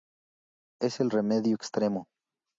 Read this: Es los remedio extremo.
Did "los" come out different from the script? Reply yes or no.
yes